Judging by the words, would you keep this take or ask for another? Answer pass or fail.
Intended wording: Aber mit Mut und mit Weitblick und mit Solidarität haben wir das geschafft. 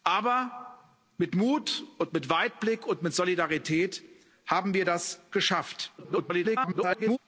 fail